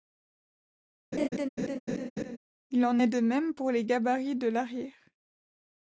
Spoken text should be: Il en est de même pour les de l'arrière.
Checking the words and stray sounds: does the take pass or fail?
fail